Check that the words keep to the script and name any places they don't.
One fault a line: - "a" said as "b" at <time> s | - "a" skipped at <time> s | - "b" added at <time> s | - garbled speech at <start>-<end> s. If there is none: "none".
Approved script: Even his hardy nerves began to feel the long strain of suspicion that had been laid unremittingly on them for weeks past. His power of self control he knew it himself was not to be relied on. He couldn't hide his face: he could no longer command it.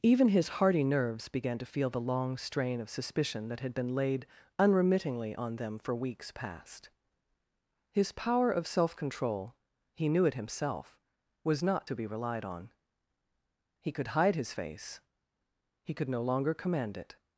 - "couldn't" said as "could" at 13.9 s